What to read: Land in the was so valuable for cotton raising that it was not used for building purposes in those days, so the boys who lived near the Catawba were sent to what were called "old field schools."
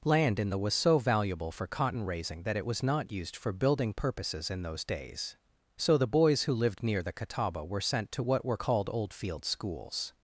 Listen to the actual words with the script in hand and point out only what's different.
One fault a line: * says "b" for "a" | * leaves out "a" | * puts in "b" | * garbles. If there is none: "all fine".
all fine